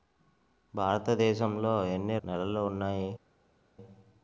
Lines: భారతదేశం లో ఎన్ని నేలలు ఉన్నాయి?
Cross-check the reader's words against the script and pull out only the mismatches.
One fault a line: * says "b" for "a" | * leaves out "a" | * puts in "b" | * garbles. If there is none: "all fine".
all fine